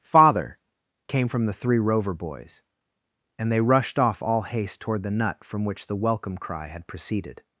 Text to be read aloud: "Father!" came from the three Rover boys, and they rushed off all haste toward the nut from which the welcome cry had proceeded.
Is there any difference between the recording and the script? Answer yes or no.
no